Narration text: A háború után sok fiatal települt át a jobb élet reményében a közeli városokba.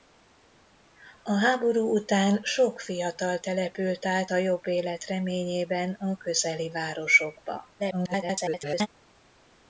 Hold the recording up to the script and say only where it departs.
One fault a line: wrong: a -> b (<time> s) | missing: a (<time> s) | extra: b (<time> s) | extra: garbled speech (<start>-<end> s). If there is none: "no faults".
extra: garbled speech (7.8-8.9 s)